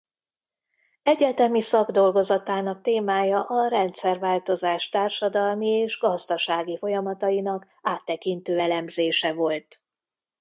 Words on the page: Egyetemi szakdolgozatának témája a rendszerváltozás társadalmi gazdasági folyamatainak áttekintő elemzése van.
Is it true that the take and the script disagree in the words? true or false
true